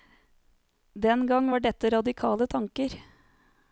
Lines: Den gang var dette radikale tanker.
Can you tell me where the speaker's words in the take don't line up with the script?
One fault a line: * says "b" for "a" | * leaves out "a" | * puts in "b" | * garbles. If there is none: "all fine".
all fine